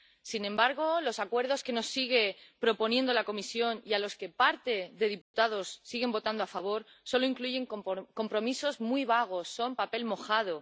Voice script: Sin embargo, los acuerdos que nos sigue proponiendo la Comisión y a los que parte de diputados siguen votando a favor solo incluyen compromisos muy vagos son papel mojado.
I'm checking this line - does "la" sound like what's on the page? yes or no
yes